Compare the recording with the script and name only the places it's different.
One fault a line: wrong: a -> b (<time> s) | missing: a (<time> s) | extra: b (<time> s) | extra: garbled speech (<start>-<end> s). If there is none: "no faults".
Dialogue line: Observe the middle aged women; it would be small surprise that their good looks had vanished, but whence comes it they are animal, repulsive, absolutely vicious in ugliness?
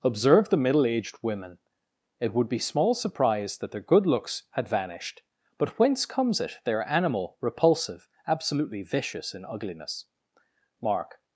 extra: Mark (10.8 s)